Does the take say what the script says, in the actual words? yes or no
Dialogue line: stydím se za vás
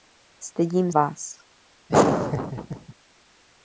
no